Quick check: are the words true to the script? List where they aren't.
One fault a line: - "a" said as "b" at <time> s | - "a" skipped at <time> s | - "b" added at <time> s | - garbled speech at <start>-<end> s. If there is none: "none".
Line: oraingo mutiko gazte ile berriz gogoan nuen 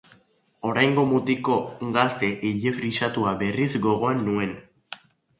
- "frisatua" added at 2.8 s